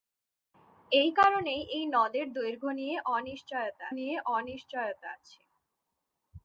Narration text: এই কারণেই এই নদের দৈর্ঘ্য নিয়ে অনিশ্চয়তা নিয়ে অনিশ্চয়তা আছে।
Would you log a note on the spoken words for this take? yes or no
no